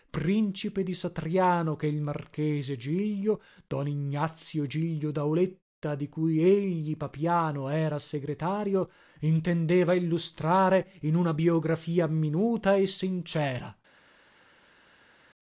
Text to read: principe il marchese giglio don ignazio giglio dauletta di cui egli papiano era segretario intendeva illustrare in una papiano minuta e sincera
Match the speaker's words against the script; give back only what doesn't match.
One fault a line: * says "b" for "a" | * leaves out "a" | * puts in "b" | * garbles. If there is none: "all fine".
* puts in "di satriano che"
* says "biografia" for "papiano"